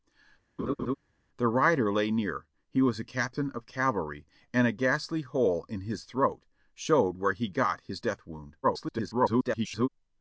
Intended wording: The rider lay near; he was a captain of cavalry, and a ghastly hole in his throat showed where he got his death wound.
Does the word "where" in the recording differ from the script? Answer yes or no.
no